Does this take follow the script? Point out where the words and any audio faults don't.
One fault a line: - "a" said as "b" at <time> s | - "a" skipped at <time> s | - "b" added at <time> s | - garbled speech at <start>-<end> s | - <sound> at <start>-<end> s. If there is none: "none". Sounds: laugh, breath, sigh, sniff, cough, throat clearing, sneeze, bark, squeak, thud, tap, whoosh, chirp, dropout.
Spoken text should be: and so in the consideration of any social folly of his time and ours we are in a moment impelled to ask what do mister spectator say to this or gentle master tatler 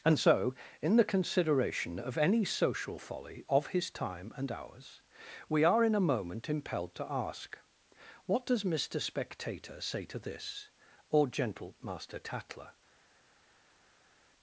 - "do" said as "does" at 8.4 s